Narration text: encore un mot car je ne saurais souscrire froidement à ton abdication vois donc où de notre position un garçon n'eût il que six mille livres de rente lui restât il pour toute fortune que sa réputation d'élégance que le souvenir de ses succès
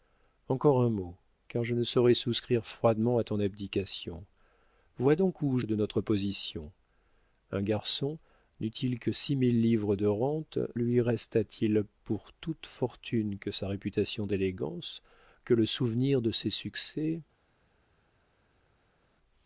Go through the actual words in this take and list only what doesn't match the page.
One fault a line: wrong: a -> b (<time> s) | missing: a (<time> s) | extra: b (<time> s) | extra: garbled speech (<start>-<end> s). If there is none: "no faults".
no faults